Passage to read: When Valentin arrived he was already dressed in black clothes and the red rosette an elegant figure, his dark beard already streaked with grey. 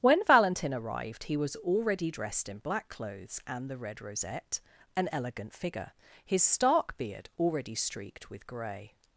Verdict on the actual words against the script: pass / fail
fail